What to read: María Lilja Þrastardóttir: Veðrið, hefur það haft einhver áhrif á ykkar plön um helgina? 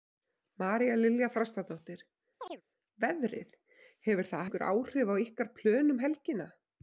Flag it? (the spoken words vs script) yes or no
yes